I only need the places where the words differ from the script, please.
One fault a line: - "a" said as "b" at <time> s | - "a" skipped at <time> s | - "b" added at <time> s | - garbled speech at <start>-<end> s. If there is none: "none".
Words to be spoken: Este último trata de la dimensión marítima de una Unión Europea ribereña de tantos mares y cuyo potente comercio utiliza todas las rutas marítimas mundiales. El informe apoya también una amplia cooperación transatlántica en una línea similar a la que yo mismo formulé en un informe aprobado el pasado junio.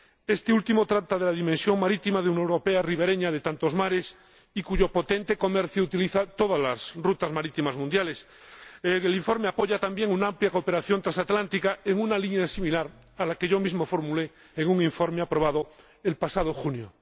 none